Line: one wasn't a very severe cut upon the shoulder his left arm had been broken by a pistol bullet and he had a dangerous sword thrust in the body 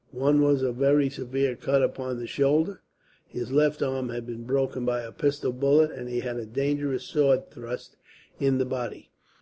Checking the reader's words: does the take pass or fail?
fail